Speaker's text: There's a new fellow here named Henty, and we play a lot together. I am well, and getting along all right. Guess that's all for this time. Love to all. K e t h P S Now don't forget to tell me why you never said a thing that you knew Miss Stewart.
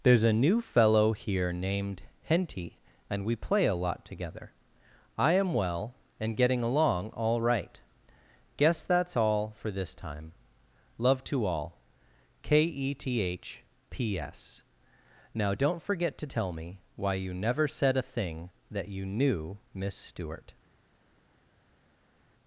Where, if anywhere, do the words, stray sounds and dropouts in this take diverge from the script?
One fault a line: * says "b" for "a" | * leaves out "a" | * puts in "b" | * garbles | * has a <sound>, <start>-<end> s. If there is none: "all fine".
all fine